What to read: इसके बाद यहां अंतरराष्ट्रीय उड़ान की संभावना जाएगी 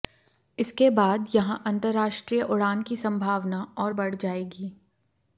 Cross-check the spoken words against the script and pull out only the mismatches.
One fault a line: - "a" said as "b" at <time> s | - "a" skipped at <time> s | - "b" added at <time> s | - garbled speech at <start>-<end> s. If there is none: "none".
- "और बढ़" added at 3.8 s